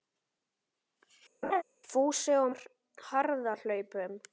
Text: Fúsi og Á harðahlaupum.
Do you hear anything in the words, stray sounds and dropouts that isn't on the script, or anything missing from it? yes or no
yes